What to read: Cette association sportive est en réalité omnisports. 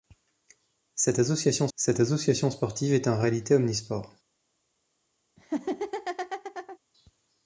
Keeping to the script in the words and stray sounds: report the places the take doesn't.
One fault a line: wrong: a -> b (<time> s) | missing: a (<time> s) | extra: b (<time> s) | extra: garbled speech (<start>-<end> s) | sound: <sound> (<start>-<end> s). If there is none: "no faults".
extra: cette association (1.8 s)
sound: laugh (5.4-6.8 s)